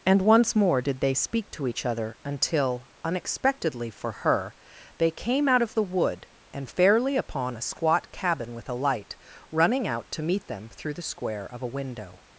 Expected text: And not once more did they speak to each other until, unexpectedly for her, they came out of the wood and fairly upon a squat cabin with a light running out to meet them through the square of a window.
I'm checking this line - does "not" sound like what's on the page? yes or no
no